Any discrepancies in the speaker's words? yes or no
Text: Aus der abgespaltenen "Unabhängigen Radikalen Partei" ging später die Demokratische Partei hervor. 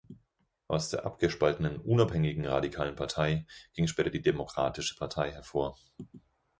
no